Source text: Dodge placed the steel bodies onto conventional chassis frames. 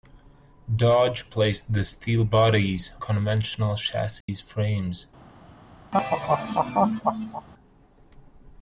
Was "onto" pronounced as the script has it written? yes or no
no